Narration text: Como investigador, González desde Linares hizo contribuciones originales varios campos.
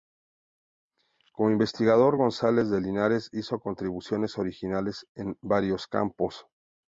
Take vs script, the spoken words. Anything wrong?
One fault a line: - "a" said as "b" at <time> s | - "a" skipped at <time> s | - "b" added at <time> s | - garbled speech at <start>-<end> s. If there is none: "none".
- "desde" said as "de" at 2.7 s
- "en" added at 5.2 s